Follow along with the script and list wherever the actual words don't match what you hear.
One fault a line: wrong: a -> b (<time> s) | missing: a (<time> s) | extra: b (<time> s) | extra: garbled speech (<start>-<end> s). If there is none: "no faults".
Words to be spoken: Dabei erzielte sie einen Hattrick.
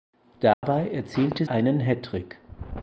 missing: sie (1.4 s)